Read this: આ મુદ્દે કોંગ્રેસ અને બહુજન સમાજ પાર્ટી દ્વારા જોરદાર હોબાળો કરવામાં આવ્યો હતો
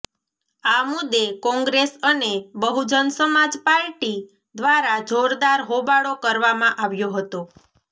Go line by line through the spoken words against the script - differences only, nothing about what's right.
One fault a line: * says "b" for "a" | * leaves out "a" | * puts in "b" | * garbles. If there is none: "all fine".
all fine